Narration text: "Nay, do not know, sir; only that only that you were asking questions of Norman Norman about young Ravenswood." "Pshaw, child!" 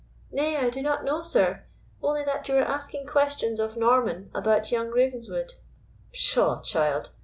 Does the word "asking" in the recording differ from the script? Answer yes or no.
no